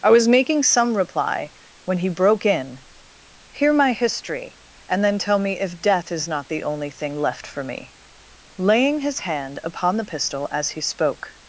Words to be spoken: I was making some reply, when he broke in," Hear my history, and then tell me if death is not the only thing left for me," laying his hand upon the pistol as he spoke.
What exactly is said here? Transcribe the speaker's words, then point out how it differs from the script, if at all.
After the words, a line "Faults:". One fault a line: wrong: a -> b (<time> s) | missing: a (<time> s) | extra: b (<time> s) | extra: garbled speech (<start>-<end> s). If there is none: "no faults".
I was making some reply, when he broke in," Hear my history, and then tell me if death is not the only thing left for me," laying his hand upon the pistol as he spoke.
Faults:
no faults